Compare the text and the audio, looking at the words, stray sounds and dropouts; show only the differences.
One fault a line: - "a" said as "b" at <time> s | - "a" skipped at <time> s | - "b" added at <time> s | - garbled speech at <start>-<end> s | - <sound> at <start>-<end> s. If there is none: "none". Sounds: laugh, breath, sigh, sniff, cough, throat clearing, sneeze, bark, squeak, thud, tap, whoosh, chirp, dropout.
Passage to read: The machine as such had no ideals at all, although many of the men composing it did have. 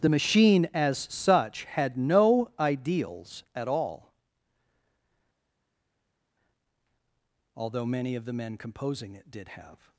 none